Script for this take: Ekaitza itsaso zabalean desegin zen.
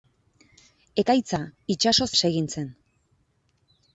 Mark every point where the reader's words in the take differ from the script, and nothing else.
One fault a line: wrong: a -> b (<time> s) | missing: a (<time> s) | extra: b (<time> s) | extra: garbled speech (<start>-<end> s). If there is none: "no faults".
missing: zabalean (2.1 s)